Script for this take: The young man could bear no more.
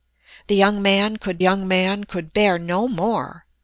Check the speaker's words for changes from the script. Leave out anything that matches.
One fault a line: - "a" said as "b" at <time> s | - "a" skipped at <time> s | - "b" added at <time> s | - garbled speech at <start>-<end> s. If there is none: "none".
- "young man could" added at 1.4 s